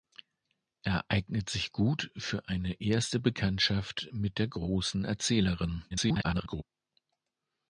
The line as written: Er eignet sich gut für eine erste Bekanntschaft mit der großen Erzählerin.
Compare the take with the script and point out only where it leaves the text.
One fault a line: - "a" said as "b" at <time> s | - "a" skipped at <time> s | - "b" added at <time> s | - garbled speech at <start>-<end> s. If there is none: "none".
- garbled speech at 5.9-6.6 s